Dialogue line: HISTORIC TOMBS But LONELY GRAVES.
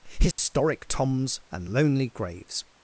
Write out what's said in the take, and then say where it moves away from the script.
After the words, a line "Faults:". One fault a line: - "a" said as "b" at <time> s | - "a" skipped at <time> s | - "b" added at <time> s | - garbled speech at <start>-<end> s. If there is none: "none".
HISTORIC TOMBS AND LONELY GRAVES.
Faults:
- "But" said as "AND" at 1.5 s